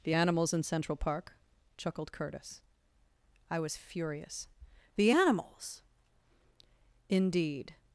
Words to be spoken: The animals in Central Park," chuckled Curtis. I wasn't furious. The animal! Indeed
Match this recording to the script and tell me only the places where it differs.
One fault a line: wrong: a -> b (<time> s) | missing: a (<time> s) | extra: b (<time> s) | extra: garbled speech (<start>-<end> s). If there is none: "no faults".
wrong: wasn't -> was (3.6 s)
wrong: animal -> animals (5.1 s)